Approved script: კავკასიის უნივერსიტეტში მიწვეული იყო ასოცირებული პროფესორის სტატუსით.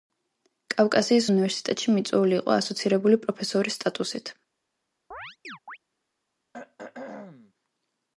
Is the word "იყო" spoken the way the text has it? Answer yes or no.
yes